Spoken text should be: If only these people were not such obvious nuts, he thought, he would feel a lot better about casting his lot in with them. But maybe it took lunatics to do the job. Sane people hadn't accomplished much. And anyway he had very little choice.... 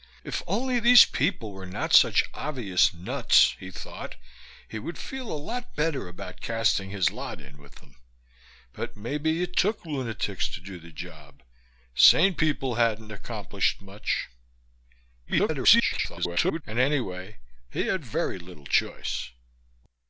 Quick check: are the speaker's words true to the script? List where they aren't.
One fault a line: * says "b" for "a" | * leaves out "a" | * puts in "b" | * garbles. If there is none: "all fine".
* garbles